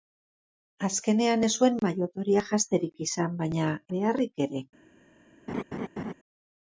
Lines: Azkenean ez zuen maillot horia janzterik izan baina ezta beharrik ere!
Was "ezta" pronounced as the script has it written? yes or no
no